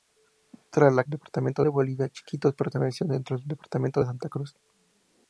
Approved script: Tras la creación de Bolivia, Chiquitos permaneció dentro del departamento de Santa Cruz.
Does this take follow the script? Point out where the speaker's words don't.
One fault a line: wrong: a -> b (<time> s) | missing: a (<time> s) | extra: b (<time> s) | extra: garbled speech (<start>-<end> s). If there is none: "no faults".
wrong: creación -> departamento (1.1 s)